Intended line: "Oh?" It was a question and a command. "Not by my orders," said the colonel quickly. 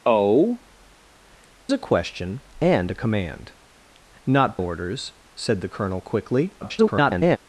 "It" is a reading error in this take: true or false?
true